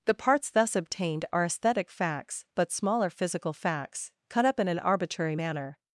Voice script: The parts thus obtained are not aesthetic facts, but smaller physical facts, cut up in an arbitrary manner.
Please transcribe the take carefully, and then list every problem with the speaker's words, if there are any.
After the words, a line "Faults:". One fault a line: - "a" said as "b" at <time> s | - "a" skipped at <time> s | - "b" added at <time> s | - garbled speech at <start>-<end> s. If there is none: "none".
The parts thus obtained are aesthetic facts, but smaller physical facts, cut up in an arbitrary manner.
Faults:
- "not" skipped at 1.4 s